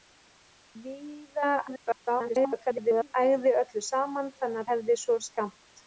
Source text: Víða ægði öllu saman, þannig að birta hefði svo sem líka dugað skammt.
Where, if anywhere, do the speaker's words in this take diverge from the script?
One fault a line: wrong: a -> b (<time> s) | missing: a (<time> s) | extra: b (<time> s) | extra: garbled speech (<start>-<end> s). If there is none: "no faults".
extra: garbled speech (1.7-3.1 s)
missing: að birta (4.6 s)
missing: sem líka dugað (5.2 s)